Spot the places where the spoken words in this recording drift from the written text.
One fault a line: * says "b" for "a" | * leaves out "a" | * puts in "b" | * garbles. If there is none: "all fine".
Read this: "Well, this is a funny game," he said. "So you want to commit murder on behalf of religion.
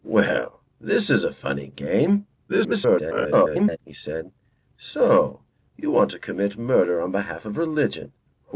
* garbles